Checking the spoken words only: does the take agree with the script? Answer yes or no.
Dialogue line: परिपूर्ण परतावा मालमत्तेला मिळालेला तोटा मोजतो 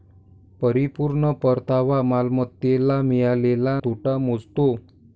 yes